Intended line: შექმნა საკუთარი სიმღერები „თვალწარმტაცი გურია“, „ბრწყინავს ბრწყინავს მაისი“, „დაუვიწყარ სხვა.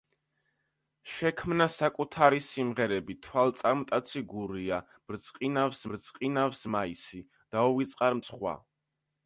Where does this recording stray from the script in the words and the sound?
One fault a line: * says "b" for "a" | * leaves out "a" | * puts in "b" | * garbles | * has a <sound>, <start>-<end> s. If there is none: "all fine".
all fine